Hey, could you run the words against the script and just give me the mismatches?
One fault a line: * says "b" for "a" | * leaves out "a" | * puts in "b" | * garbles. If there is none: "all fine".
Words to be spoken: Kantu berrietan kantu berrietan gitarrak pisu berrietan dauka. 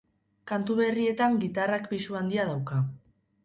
* leaves out "kantu berrietan"
* says "handia" for "berrietan"